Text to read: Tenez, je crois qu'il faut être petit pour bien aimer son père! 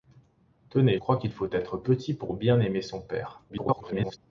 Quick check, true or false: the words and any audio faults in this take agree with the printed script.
false